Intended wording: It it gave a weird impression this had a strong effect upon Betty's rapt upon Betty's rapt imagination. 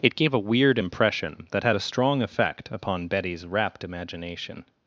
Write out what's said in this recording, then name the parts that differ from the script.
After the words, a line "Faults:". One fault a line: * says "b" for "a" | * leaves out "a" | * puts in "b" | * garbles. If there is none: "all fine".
It gave a weird impression that had a strong effect upon Betty's rapt imagination.
Faults:
* leaves out "it"
* says "that" for "this"
* leaves out "upon Betty's rapt"